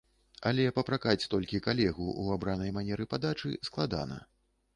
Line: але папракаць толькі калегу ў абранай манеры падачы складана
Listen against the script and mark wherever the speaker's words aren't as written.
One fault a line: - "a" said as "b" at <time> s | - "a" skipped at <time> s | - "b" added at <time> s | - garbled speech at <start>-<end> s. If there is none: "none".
none